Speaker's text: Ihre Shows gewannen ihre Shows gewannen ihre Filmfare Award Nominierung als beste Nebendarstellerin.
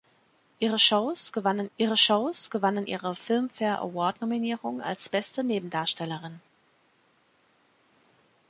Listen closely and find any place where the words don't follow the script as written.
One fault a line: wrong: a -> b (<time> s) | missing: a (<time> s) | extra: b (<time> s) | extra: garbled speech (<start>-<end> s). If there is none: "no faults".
no faults